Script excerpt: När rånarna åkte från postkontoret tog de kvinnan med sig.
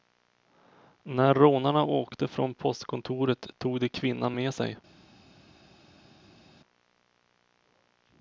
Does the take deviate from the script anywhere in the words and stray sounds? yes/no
no